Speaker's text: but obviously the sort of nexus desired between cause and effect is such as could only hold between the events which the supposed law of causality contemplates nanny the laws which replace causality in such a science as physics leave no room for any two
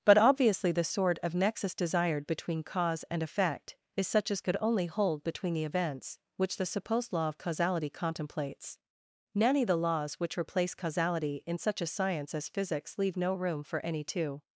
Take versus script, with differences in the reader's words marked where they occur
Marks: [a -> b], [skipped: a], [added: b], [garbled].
but obviously the sort of nexus desired between cause and effect is such as could only hold between the events which the supposed law of causality contemplates nanny the laws which replace causality in such a science as physics leave no room for any two